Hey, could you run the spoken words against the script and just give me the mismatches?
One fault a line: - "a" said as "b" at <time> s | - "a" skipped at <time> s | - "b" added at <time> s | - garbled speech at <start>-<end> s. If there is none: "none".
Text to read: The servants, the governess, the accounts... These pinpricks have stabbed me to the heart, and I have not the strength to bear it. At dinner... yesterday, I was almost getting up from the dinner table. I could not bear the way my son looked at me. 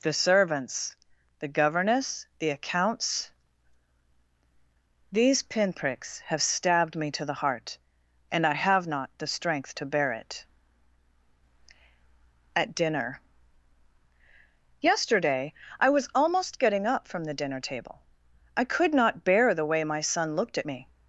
none